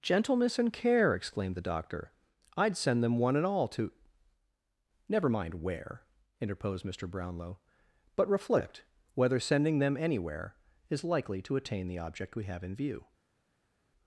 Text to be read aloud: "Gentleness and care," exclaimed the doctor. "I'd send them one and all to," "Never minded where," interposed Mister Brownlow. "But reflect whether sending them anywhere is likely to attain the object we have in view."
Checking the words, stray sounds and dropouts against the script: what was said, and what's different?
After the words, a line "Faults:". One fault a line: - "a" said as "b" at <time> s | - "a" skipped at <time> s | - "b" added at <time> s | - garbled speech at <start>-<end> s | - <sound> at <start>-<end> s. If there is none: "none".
"Gentleness and care," exclaimed the doctor. "I'd send them one and all to," "Never mind where," interposed Mister Brownlow. "But reflect whether sending them anywhere is likely to attain the object we have in view."
Faults:
- "minded" said as "mind" at 5.3 s